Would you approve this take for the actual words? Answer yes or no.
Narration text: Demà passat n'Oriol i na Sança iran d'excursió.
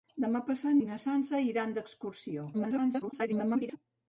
no